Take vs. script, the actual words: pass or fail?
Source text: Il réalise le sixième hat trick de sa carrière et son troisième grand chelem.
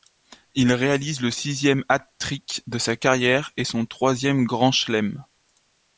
pass